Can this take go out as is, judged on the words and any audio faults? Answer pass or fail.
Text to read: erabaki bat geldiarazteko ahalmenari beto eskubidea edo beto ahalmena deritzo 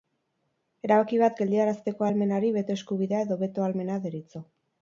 pass